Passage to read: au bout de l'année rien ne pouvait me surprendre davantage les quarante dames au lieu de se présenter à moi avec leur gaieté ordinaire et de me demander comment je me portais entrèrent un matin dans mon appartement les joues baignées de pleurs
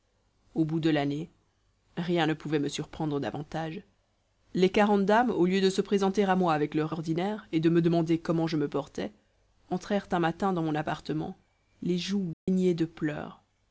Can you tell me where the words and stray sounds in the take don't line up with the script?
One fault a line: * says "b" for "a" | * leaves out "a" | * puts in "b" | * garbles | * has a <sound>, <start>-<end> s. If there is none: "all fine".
* leaves out "gaieté"
* has a dropout, 12.3-12.5 s